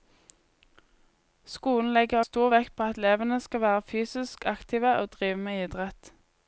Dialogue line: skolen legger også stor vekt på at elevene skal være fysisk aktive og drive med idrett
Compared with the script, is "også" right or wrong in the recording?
wrong